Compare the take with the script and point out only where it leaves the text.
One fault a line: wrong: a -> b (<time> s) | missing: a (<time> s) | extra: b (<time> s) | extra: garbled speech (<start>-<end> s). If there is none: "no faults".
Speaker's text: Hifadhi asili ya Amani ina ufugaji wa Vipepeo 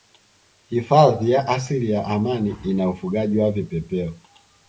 extra: ya (1.3 s)